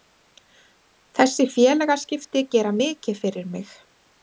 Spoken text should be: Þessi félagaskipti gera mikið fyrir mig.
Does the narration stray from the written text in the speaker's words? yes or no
no